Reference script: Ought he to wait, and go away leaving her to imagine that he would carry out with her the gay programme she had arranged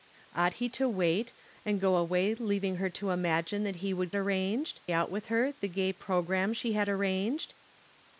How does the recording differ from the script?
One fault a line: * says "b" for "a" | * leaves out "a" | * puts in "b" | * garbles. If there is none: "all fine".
* says "arranged" for "carry"